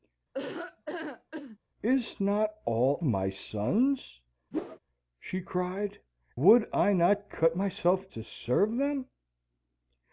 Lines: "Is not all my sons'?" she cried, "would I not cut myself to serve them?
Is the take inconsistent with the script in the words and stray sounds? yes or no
yes